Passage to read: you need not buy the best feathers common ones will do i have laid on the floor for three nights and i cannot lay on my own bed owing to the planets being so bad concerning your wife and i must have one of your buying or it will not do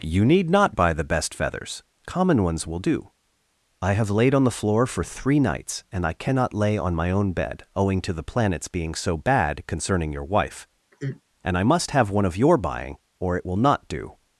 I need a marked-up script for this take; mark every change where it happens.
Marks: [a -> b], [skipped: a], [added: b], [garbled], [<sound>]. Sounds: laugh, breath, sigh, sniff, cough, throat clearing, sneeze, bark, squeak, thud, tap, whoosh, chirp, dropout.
you need not buy the best feathers common ones will do i have laid on the floor for three nights and i cannot lay on my own bed owing to the planets being so bad concerning your wife [sigh] and i must have one of your buying or it will not do